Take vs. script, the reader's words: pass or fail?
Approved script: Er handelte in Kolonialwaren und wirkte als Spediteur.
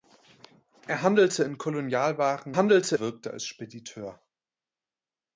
fail